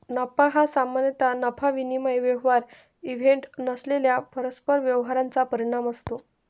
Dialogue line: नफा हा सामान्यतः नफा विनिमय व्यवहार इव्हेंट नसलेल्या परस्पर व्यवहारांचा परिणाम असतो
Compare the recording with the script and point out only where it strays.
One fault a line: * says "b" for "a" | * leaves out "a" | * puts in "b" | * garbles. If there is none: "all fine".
all fine